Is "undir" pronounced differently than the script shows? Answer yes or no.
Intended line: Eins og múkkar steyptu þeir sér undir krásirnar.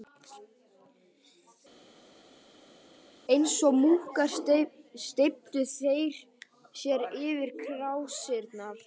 yes